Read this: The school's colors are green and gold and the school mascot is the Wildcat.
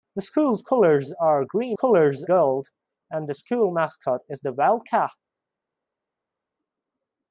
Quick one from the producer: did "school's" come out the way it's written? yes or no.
yes